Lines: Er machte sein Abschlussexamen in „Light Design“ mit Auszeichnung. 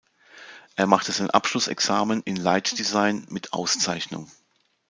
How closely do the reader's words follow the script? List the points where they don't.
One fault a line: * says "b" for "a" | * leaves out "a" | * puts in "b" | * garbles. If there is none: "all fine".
all fine